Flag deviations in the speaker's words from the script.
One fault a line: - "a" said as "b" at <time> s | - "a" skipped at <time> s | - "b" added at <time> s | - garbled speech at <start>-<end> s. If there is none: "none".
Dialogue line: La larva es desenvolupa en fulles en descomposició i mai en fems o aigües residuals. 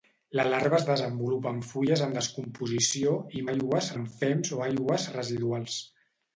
- "mai" said as "aigües" at 3.5 s